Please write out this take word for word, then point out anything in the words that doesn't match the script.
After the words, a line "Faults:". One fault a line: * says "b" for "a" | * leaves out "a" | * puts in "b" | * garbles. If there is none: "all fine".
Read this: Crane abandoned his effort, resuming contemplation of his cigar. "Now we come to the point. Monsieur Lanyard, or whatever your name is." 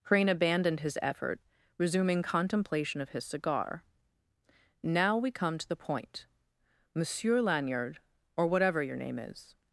Crane abandoned his effort, resuming contemplation of his cigar. "Now we come to the point. Monsieur Lanyard, or whatever your name is."
Faults:
all fine